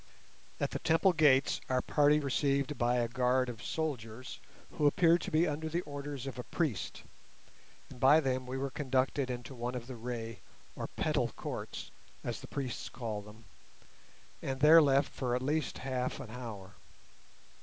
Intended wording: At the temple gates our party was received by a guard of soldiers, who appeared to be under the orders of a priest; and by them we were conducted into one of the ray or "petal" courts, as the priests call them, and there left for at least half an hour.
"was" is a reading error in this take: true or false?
true